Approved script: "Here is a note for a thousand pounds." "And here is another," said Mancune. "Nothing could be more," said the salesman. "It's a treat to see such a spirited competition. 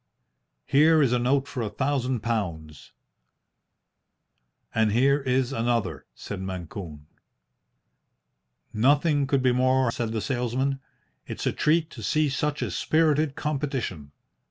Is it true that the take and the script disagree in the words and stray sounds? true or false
false